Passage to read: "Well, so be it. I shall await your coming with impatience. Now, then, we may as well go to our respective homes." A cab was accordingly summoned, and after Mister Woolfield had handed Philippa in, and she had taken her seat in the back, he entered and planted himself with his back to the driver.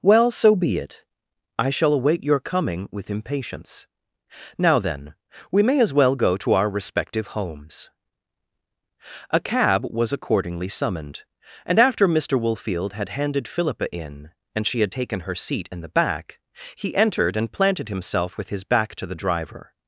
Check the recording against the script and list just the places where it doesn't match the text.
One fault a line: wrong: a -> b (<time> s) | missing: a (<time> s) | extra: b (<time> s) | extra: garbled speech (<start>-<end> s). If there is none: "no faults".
no faults